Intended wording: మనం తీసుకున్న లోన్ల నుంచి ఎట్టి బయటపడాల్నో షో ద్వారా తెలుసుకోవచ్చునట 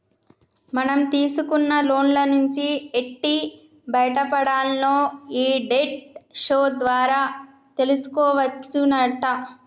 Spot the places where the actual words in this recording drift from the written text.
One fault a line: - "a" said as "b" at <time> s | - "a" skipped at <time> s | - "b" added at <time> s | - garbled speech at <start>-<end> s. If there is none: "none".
- "ఈ డెట్" added at 5.4 s